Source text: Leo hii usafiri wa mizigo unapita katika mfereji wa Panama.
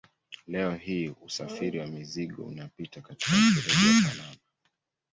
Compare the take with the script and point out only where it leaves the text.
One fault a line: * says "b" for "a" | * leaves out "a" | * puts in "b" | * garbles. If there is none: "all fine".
all fine